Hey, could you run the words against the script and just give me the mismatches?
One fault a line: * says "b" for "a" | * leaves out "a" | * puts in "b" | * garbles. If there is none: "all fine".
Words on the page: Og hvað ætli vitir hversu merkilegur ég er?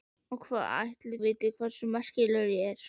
all fine